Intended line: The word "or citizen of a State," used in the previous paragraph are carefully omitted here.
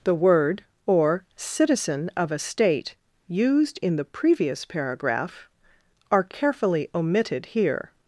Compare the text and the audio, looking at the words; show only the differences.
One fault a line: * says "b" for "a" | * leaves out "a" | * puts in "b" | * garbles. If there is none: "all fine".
all fine